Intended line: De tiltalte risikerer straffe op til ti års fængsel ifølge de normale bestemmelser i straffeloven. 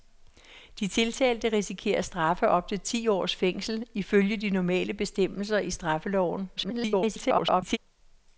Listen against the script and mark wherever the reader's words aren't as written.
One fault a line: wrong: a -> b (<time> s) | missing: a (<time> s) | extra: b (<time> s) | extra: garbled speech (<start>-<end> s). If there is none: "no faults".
extra: garbled speech (6.6-7.8 s)